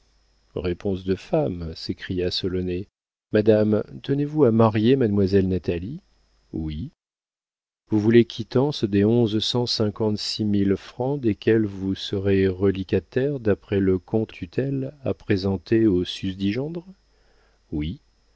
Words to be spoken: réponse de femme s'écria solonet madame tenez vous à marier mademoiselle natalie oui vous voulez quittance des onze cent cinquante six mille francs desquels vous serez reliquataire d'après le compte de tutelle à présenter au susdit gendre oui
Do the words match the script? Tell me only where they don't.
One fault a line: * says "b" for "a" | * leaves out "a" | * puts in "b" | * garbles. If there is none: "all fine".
* leaves out "de"